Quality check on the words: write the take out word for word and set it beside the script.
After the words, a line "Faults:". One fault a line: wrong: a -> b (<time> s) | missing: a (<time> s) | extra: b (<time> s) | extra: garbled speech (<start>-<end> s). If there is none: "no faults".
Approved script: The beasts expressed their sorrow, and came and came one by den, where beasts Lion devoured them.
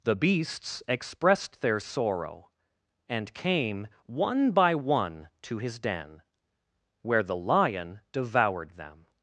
The beasts expressed their sorrow, and came one by one to his den, where the Lion devoured them.
Faults:
wrong: and came -> one by (4.0 s)
wrong: by -> to his (5.4 s)
wrong: beasts -> the (7.2 s)